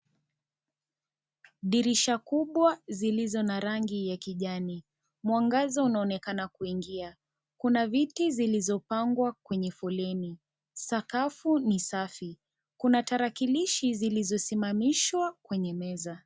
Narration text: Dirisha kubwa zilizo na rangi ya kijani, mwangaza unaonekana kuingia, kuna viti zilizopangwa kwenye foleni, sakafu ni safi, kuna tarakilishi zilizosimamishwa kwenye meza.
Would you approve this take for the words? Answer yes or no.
yes